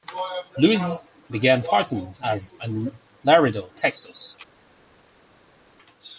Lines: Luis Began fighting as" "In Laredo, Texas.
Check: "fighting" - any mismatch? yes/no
no